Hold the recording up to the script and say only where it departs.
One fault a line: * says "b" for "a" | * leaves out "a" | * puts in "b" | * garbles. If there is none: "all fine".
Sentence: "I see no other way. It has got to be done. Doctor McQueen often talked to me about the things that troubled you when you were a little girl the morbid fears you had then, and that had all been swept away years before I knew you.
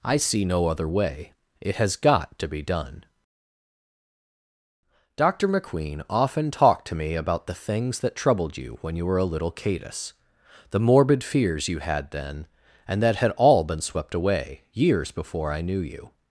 * says "cadus" for "girl"